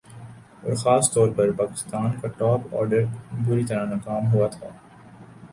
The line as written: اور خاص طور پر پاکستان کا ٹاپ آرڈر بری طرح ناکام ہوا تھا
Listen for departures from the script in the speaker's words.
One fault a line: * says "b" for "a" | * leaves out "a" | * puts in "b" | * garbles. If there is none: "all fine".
all fine